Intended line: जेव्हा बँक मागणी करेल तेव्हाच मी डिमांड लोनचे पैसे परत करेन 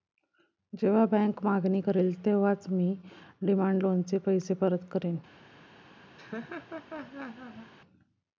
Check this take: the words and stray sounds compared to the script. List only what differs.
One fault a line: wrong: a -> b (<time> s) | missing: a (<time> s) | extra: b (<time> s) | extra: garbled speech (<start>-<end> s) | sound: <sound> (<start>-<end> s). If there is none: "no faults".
sound: laugh (6.2-7.7 s)